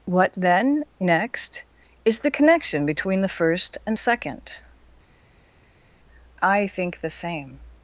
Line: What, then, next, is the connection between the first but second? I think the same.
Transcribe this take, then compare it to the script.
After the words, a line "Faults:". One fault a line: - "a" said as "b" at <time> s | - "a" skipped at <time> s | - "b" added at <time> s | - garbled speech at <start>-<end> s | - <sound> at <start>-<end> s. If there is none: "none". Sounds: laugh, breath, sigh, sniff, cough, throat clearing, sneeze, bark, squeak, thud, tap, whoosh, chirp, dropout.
What, then, next, is the connection between the first and second? I think the same.
Faults:
- "but" said as "and" at 3.9 s